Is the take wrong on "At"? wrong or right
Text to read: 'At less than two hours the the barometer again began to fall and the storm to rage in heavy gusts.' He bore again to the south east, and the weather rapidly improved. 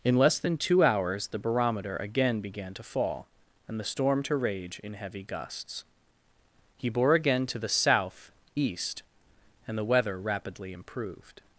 wrong